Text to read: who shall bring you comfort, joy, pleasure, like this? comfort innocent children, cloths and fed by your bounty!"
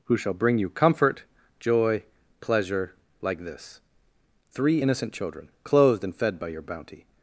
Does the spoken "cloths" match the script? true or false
false